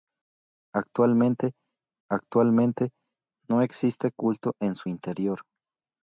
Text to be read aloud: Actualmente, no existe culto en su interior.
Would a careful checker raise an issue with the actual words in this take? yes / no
yes